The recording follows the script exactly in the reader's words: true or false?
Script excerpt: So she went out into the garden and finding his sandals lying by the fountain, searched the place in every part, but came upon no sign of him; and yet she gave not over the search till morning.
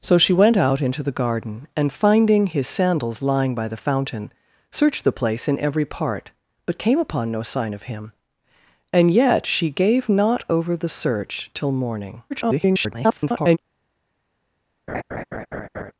false